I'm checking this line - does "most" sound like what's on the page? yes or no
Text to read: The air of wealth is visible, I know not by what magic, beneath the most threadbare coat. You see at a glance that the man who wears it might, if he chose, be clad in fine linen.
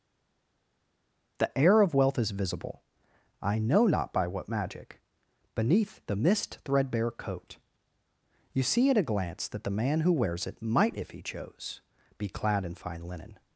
no